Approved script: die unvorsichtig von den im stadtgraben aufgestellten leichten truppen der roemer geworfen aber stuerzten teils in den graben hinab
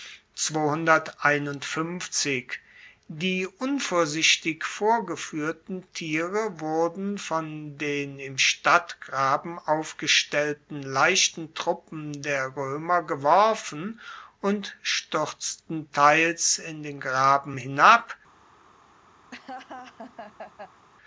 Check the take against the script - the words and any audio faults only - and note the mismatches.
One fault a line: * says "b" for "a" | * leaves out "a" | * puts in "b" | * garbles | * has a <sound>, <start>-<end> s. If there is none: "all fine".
* puts in "vorgefuehrten tiere wurden"
* says "und" for "aber"
* has a laugh, 19.3-20.9 s